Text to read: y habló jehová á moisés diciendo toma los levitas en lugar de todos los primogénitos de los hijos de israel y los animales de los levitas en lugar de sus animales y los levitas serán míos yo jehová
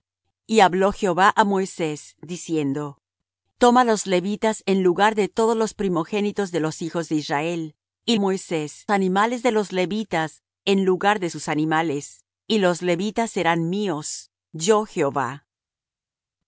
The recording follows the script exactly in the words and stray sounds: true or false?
false